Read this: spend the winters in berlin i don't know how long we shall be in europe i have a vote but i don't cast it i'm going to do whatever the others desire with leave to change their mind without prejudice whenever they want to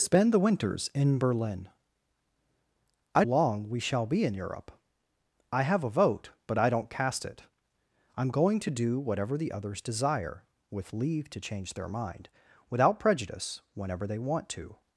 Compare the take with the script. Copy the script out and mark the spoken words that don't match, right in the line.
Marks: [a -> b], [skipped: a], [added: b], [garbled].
spend the winters in berlin i [skipped: don't know how] long we shall be in europe i have a vote but i don't cast it i'm going to do whatever the others desire with leave to change their mind without prejudice whenever they want to